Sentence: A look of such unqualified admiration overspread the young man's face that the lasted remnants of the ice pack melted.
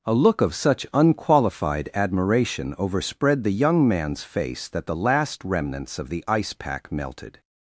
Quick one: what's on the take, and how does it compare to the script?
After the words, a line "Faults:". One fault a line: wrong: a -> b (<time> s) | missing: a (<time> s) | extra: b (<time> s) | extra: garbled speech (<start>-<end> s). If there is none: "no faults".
A look of such unqualified admiration overspread the young man's face that the last remnants of the ice pack melted.
Faults:
wrong: lasted -> last (5.0 s)